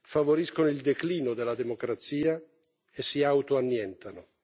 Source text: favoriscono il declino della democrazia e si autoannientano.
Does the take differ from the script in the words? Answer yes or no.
no